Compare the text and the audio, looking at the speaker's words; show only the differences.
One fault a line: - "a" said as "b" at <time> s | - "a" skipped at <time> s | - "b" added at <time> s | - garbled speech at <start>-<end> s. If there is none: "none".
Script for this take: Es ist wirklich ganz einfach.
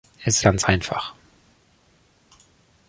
- "ist wirklich" skipped at 0.4 s